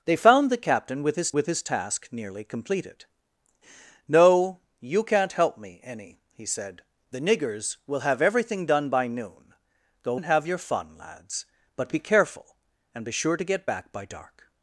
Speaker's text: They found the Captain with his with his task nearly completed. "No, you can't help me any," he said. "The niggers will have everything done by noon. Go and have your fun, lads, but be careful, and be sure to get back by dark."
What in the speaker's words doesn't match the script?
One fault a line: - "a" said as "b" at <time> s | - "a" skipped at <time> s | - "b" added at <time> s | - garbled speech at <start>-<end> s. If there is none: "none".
none